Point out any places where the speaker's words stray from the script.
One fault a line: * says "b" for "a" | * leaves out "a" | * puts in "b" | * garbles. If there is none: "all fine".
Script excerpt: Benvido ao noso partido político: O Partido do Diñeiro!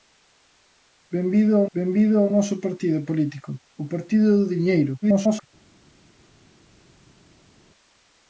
* puts in "benvido ao"
* garbles